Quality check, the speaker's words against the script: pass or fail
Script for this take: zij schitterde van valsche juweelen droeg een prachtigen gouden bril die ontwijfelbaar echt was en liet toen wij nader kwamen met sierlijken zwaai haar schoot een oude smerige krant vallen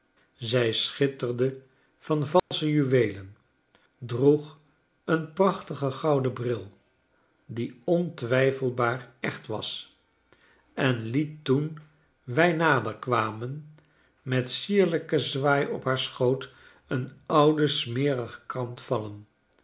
fail